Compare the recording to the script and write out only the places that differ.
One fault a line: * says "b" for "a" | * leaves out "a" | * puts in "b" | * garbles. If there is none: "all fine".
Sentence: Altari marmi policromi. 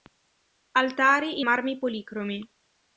all fine